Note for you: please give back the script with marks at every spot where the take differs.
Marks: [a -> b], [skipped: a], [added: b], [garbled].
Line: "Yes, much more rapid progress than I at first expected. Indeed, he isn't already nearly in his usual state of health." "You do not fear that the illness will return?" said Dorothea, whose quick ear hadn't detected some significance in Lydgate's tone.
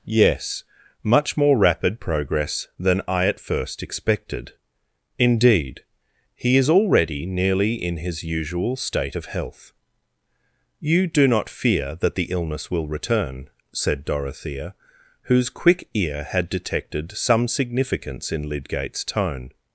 "Yes, much more rapid progress than I at first expected. Indeed, he [isn't -> is] already nearly in his usual state of health." "You do not fear that the illness will return?" said Dorothea, whose quick ear [hadn't -> had] detected some significance in Lydgate's tone.